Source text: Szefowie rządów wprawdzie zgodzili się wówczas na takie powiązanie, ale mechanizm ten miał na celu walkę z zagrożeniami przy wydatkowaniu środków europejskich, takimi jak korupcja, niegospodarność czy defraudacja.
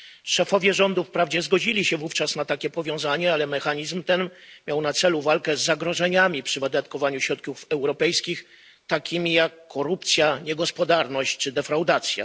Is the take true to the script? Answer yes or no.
yes